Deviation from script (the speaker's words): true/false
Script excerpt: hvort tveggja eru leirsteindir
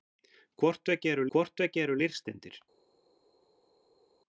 true